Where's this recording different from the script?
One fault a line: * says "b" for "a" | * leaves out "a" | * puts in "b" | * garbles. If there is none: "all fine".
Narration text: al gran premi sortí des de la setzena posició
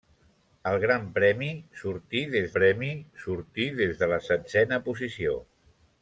* puts in "premi sortí des"